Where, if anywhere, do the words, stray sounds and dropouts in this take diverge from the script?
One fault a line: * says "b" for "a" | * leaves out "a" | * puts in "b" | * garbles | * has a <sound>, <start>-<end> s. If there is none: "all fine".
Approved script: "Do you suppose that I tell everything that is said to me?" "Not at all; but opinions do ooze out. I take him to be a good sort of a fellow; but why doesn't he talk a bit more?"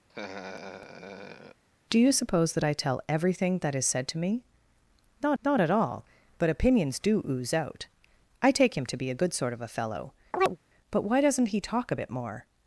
* has a laugh, 0.1-1.6 s
* puts in "not"
* has a chirp, 10.3-10.6 s